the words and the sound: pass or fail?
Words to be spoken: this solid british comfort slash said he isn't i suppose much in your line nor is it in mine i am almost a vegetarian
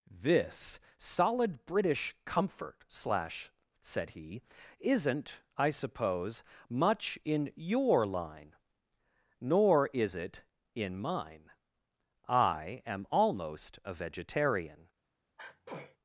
fail